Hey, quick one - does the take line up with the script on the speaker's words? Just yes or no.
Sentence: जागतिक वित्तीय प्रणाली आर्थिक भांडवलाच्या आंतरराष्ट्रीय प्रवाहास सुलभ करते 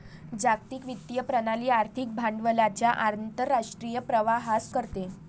no